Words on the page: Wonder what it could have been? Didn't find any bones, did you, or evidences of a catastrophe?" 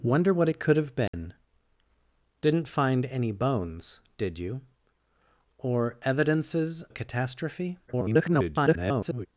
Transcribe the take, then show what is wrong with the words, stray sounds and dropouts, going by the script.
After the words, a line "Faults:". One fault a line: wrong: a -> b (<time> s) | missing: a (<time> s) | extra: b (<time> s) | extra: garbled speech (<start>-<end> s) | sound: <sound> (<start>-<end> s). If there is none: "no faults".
Wonder what it could have been? Didn't find any bones, did you, or evidences a catastrophe?" [garbled]
Faults:
sound: dropout (1.1-1.1 s)
missing: of (6.8 s)
extra: garbled speech (7.9-9.3 s)